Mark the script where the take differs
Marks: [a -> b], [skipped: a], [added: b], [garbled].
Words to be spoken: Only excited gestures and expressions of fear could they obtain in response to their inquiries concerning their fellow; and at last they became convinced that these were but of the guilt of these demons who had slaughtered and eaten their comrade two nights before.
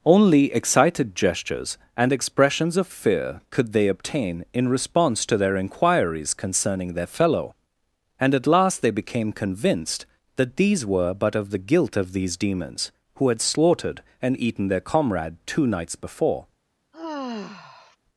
Only excited gestures and expressions of fear could they obtain in response to their inquiries concerning their fellow; and at last they became convinced that these were but of the guilt of these demons who had slaughtered and eaten their comrade two nights before.